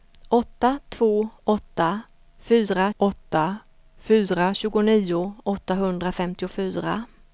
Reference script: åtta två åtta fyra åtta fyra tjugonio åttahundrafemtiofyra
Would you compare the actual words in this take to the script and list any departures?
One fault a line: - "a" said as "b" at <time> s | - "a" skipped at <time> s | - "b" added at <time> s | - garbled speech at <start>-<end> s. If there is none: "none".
none